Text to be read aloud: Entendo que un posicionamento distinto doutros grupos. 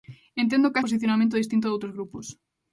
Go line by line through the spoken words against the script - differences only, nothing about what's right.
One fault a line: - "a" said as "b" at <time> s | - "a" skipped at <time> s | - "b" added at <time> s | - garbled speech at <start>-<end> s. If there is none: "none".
none